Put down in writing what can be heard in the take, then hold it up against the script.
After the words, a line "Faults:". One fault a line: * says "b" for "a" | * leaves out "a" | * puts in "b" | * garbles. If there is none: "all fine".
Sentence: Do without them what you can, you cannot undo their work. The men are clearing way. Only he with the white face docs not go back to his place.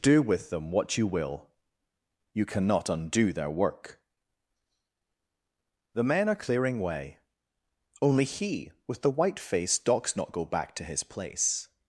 Do with them what you will, you cannot undo their work. The men are clearing way. Only he with the white face docs not go back to his place.
Faults:
* says "with" for "without"
* says "will" for "can"